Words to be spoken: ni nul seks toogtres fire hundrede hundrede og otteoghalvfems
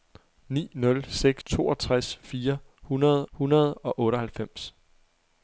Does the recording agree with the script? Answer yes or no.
yes